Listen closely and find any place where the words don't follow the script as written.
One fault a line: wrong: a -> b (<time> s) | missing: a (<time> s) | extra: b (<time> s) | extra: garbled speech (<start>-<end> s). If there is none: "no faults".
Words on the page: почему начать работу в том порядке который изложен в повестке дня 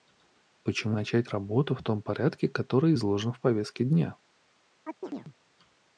no faults